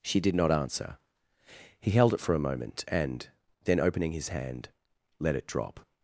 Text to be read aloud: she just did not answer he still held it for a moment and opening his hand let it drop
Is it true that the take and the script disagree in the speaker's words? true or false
true